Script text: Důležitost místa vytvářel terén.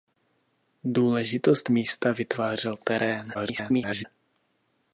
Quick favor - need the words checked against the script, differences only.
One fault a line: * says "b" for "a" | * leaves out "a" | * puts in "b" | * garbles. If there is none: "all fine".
* garbles